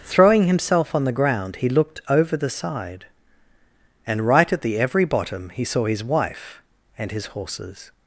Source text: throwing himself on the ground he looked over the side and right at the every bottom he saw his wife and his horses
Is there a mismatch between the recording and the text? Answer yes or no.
no